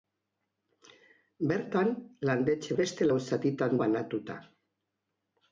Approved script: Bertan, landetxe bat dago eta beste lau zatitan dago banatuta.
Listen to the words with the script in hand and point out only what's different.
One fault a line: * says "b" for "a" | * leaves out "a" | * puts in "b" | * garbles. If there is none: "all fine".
* leaves out "bat dago eta"
* leaves out "dago"